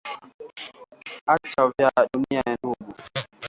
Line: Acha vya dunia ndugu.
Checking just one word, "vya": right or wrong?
right